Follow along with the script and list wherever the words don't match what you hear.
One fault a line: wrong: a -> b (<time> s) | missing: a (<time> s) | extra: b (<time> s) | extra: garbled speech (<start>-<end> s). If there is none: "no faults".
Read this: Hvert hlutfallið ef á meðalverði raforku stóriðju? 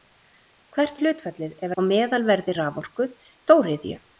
no faults